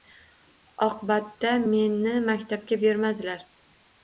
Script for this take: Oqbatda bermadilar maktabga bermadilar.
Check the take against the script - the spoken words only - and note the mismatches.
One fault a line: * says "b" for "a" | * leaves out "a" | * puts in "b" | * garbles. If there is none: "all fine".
* says "meni" for "bermadilar"